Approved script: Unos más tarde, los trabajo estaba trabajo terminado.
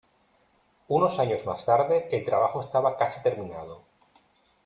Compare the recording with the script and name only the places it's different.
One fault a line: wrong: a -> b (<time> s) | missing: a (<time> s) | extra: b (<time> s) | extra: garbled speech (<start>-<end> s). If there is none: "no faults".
extra: años (1.2 s)
wrong: los -> el (2.1 s)
wrong: trabajo -> casi (3.0 s)